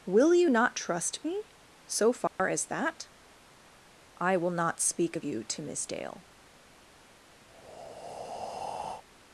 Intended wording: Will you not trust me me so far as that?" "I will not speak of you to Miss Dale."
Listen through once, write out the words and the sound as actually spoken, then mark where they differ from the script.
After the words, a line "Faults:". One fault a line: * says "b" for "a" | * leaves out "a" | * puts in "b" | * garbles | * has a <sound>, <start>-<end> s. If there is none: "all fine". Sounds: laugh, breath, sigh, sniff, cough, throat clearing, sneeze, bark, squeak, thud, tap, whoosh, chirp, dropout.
Will you not trust me so far as that?" "I will not speak of you to Miss Dale."
Faults:
* leaves out "me"
* has a dropout, 2.3-2.4 s
* has a breath, 7.5-9.0 s